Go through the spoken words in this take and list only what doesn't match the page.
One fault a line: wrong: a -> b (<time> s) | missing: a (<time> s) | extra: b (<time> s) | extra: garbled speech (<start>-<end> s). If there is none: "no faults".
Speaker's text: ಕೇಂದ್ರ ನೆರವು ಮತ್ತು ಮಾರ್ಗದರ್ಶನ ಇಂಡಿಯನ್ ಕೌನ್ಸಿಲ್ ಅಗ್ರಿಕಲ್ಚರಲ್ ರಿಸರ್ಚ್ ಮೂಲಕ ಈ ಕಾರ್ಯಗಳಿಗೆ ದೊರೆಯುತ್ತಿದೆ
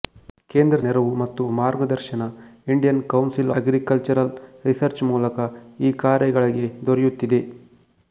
no faults